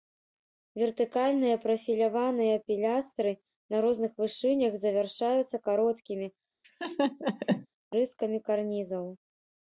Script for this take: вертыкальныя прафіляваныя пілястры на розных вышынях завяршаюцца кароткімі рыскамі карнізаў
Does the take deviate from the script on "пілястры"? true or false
false